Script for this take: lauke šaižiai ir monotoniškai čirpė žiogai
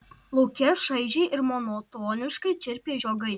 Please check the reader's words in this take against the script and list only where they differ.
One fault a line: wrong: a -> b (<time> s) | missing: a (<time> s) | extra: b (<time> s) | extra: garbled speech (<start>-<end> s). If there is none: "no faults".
no faults